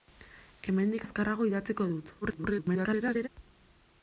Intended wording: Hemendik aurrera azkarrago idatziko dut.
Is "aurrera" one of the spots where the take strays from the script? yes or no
yes